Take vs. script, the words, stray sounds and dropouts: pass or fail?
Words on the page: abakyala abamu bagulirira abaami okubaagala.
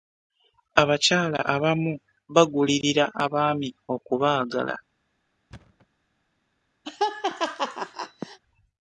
fail